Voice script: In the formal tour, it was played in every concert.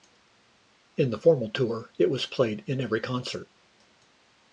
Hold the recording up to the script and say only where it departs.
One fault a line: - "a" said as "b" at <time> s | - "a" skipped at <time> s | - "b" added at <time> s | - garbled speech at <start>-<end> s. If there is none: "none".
none